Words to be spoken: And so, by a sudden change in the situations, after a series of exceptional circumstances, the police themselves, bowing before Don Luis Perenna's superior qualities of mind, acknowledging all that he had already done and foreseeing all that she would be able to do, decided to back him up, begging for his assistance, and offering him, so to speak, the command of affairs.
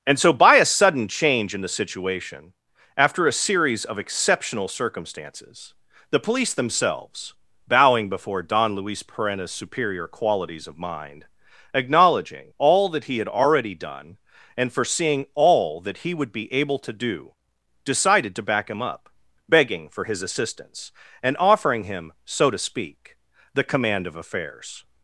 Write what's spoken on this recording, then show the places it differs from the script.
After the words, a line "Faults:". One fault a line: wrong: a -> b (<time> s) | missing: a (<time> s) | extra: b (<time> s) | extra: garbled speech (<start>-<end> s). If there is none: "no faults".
And so, by a sudden change in the situation, after a series of exceptional circumstances, the police themselves, bowing before Don Luis Perenna's superior qualities of mind, acknowledging all that he had already done and foreseeing all that he would be able to do, decided to back him up, begging for his assistance, and offering him, so to speak, the command of affairs.
Faults:
wrong: situations -> situation (1.7 s)
wrong: she -> he (16.0 s)